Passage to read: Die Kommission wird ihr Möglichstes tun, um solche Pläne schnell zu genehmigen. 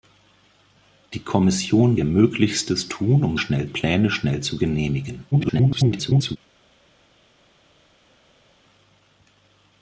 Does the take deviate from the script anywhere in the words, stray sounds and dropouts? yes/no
yes